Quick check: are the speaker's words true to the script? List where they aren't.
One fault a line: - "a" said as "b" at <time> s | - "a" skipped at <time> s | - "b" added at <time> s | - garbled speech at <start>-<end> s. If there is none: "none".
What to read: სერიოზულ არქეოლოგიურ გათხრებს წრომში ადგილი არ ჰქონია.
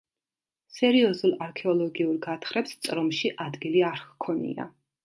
none